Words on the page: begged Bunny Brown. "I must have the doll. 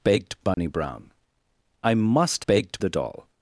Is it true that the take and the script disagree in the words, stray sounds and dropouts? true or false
true